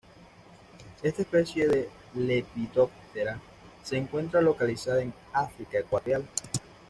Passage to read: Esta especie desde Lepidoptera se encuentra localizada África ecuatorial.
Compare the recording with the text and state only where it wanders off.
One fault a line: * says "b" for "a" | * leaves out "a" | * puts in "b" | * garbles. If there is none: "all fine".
* says "de" for "desde"
* puts in "en"